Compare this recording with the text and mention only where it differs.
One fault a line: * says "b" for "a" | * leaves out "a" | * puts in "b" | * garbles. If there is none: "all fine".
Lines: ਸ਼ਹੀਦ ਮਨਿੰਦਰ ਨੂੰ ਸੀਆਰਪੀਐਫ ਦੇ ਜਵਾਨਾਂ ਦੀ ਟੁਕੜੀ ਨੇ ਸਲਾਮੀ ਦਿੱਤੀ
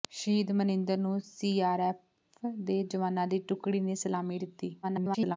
* garbles